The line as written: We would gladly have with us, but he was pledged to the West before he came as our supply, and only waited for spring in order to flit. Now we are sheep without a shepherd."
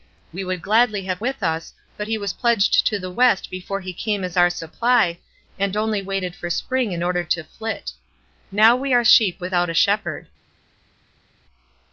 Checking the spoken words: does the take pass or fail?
pass